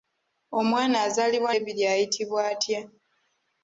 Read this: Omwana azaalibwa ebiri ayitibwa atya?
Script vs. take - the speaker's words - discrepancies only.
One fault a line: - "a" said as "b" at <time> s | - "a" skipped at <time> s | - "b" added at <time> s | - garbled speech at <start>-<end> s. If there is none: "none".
none